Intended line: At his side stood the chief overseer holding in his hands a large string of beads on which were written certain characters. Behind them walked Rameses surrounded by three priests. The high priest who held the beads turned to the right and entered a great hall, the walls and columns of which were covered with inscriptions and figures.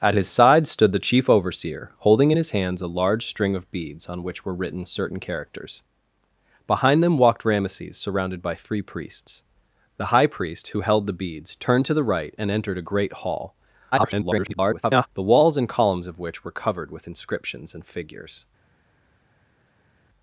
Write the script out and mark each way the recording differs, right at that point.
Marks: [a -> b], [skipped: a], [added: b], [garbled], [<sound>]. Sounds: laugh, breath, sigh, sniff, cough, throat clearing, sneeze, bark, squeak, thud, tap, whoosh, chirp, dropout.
At his side stood the chief overseer holding in his hands a large string of beads on which were written certain characters. Behind them walked Rameses surrounded by three priests. The high priest who held the beads turned to the right and entered a great hall, [garbled] the walls and columns of which were covered with inscriptions and figures.